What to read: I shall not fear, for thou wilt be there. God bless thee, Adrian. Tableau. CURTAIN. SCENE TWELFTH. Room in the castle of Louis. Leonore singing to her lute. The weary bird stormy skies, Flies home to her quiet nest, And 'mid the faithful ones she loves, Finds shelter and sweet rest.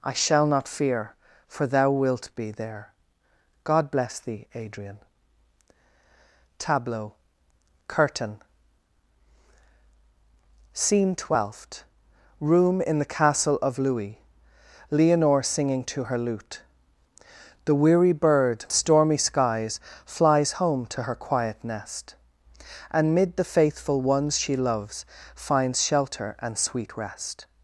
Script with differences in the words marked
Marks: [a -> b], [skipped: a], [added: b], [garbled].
I shall not fear, for thou wilt be there. God bless thee, Adrian. Tableau. CURTAIN. SCENE TWELFTH. Room in the castle of Louis. Leonore singing to her lute. The weary bird stormy skies, Flies home to her quiet nest, And 'mid the faithful ones she loves, Finds shelter and sweet rest.